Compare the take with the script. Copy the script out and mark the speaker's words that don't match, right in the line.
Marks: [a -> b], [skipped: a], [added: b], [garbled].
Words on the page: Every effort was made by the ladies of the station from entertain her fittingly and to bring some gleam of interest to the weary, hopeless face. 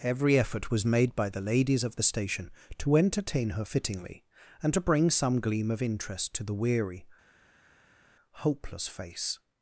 Every effort was made by the ladies of the station [from -> to] entertain her fittingly and to bring some gleam of interest to the weary, hopeless face.